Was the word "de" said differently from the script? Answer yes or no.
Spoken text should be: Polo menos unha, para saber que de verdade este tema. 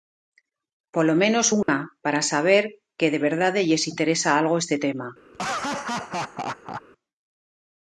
no